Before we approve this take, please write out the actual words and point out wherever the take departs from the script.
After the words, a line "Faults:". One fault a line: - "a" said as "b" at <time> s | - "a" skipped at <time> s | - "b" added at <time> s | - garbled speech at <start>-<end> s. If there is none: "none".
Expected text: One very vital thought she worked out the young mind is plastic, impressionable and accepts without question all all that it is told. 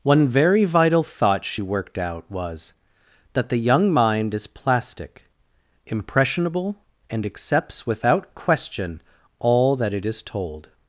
One very vital thought she worked out was, that the young mind is plastic, impressionable and accepts without question all that it is told.
Faults:
- "was that" added at 2.3 s
- "all" skipped at 9.8 s